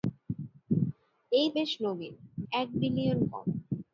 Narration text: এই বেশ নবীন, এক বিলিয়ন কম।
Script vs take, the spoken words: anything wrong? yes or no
no